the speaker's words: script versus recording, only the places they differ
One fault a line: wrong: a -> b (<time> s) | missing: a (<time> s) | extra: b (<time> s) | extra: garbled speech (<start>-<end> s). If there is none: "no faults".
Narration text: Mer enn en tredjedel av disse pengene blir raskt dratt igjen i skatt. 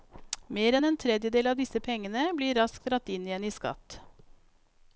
extra: inn (3.1 s)